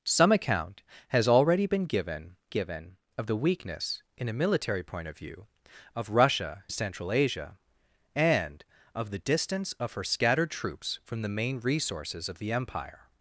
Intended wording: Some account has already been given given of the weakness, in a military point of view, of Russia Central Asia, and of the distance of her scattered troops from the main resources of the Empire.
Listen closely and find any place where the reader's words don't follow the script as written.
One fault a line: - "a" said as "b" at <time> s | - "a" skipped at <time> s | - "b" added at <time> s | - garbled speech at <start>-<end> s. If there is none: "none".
none